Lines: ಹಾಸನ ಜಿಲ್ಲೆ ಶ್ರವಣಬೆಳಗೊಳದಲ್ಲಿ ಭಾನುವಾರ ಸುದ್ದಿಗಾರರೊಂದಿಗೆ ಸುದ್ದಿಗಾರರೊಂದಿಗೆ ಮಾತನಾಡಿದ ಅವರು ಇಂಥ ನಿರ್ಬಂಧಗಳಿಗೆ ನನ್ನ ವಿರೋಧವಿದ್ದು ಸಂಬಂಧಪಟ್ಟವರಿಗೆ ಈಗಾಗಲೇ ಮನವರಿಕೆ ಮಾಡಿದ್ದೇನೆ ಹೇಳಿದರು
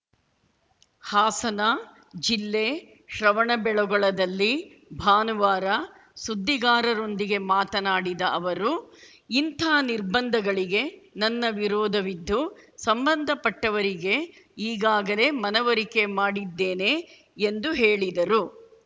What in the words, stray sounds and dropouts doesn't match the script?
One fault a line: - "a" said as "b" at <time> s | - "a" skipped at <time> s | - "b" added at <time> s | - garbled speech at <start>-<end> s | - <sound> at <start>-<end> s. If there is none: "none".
- "ಸುದ್ದಿಗಾರರೊಂದಿಗೆ" skipped at 7.4 s
- "ಎಂದು" added at 17.5 s